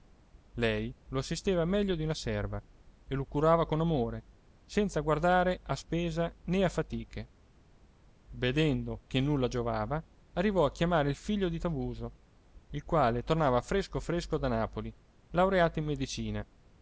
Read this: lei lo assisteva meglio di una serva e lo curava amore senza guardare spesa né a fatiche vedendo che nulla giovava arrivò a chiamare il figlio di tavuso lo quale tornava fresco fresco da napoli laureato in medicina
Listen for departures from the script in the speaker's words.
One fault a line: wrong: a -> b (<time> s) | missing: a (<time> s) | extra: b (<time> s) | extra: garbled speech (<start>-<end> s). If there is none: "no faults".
extra: con (3.7 s)
extra: a (5.6 s)
wrong: lo -> il (12.7 s)